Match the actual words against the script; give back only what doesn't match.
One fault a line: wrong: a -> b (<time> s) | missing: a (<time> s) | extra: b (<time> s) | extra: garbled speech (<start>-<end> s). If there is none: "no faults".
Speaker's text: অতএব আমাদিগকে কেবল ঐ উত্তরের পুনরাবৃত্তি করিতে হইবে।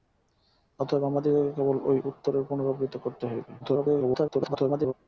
extra: garbled speech (3.6-4.9 s)